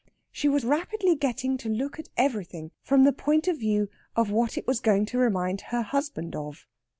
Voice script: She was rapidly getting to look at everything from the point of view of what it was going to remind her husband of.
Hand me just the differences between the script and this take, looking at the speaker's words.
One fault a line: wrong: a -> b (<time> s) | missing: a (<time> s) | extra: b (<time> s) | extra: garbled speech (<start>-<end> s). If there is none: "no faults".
no faults